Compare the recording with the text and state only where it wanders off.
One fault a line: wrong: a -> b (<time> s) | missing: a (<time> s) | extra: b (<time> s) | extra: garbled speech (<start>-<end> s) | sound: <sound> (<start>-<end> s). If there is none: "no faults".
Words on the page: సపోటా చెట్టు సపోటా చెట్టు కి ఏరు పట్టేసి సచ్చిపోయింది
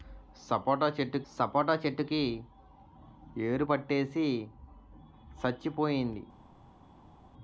no faults